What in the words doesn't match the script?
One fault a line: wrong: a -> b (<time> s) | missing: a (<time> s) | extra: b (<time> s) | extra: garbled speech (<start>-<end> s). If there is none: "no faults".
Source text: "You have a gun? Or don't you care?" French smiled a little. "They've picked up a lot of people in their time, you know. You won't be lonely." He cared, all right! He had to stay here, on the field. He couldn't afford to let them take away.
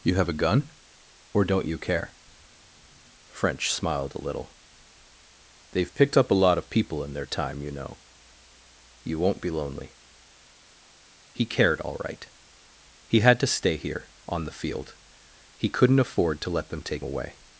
no faults